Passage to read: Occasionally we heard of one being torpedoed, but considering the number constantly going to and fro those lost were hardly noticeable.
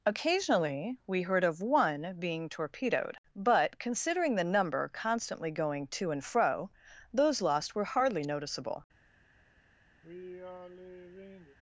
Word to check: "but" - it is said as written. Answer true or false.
true